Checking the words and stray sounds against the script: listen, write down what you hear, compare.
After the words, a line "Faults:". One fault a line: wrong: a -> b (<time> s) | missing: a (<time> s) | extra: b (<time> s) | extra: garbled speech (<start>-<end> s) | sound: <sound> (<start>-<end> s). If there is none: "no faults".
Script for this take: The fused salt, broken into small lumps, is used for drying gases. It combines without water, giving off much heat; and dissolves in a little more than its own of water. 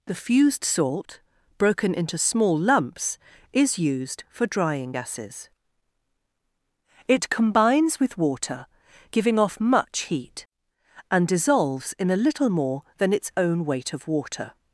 The fused salt, broken into small lumps, is used for drying gases. It combines with water, giving off much heat; and dissolves in a little more than its own weight of water.
Faults:
wrong: without -> with (8.0 s)
extra: weight (13.6 s)